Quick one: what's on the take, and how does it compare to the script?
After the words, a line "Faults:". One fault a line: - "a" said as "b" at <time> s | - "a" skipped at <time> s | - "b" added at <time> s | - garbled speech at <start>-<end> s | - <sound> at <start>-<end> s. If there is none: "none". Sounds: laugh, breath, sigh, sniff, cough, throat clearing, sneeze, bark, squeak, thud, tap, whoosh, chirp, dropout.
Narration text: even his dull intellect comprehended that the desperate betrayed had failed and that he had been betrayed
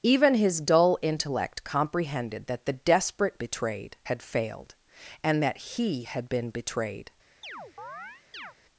even his dull intellect comprehended that the desperate betrayed had failed and that he had been betrayed
Faults:
- chirp at 7.4-8.5 s